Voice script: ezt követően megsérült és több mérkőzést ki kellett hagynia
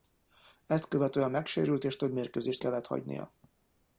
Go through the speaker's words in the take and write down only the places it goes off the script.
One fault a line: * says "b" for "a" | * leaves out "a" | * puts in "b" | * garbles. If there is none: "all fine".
* leaves out "ki"